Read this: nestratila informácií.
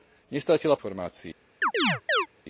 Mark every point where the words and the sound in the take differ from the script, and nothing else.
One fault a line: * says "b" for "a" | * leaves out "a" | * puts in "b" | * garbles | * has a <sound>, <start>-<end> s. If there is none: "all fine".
* has a chirp, 1.6-2.3 s